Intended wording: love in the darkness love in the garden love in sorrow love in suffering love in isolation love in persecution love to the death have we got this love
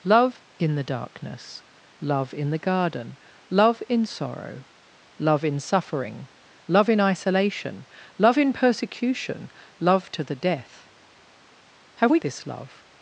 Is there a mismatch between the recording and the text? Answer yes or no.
yes